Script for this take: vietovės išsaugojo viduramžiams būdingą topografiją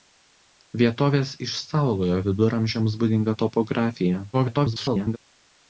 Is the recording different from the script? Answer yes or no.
yes